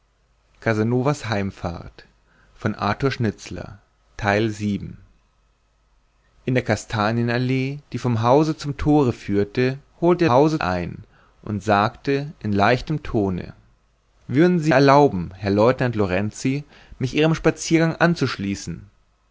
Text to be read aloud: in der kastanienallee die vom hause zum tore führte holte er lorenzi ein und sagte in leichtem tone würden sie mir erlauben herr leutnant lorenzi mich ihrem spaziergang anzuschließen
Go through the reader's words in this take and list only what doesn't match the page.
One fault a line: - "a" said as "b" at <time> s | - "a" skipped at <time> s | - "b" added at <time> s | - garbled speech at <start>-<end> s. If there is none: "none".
- "lorenzi" said as "hause" at 10.3 s
- "mir" skipped at 14.7 s